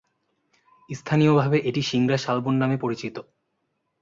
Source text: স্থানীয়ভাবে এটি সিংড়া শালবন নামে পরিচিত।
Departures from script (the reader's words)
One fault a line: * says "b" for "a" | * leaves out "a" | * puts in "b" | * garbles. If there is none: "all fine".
all fine